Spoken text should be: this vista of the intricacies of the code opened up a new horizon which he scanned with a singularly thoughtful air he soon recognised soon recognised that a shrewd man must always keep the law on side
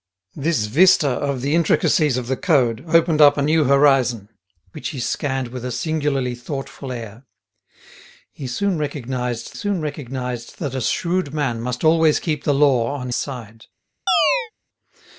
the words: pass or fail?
pass